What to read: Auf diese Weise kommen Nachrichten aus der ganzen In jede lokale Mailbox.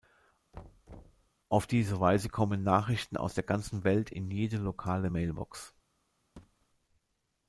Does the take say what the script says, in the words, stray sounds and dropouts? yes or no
no